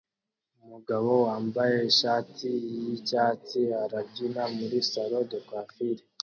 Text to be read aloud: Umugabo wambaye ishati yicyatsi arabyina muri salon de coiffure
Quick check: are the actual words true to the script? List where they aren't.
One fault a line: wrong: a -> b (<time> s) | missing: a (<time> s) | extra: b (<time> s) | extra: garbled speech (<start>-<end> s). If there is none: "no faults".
no faults